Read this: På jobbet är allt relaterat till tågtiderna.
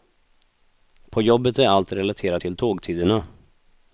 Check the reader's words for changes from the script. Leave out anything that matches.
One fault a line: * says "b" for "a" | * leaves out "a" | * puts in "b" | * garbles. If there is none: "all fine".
all fine